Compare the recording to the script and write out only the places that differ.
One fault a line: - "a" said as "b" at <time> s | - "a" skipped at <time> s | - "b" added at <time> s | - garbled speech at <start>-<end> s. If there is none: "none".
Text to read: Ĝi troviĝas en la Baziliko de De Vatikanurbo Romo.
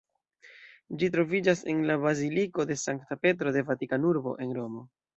- "Sankta Petro" added at 2.9 s
- "en" added at 4.5 s